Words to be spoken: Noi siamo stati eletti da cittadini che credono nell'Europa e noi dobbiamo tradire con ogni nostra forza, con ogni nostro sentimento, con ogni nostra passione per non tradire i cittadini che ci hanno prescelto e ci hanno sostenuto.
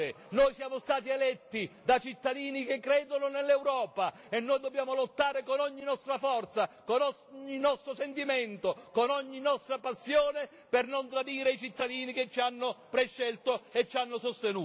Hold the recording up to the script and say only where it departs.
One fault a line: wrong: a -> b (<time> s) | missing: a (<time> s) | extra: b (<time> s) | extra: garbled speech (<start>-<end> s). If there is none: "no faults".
wrong: tradire -> lottare (5.0 s)